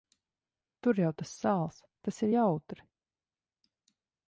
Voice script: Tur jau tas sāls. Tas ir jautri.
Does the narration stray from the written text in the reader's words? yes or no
no